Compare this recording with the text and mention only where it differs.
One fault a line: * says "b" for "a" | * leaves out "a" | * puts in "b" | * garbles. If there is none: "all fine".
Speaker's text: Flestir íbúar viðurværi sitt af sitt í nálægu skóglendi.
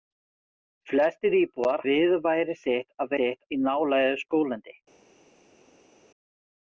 all fine